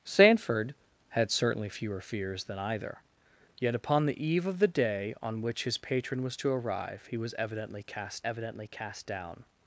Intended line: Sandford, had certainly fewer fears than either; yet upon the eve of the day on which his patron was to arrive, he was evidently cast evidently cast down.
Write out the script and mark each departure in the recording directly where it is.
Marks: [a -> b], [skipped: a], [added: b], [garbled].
Sandford, had certainly fewer fears than either; yet upon the eve of the day on which his patron was to arrive, he was evidently cast evidently cast down.